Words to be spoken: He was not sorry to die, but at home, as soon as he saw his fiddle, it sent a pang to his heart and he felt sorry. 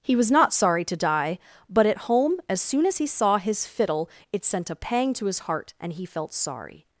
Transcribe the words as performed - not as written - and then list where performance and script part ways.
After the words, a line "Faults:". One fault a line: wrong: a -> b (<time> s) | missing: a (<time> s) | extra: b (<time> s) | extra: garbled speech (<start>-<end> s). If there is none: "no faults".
He was not sorry to die, but at home, as soon as he saw his fiddle, it sent a pang to his heart and he felt sorry.
Faults:
no faults